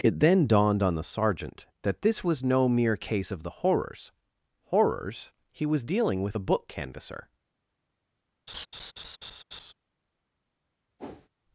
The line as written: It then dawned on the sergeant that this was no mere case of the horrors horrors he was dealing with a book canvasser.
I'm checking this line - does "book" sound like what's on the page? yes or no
yes